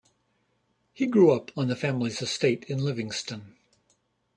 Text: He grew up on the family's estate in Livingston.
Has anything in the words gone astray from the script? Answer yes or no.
no